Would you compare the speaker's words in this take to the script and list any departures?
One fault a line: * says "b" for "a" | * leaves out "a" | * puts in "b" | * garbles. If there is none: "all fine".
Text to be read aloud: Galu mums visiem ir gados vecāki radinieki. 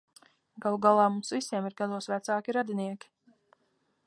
* puts in "galā"